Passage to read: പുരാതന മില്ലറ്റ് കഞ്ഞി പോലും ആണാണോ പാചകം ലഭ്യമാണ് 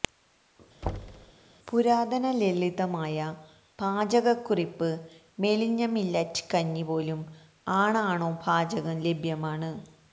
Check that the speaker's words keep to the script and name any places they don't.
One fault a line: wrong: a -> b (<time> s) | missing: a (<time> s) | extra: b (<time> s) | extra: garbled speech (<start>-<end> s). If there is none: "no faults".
extra: ലളിതമായ പാചകക്കുറിപ്പ് മെലിഞ്ഞ (2.4 s)